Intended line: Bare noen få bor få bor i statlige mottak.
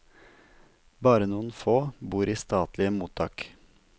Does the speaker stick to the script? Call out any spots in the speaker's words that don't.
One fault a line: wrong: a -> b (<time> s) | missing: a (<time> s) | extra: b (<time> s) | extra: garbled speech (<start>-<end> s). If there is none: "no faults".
missing: få bor (2.3 s)